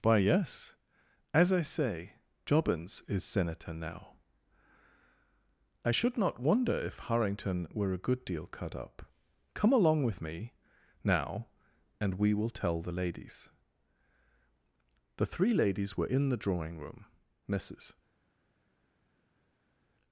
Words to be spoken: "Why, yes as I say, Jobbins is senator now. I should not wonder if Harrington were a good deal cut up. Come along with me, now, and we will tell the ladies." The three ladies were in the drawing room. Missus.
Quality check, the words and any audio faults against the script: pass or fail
pass